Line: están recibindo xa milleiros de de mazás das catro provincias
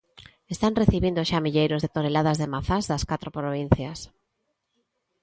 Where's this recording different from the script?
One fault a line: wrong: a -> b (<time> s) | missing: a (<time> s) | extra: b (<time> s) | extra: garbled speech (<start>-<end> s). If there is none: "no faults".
extra: toneladas (1.9 s)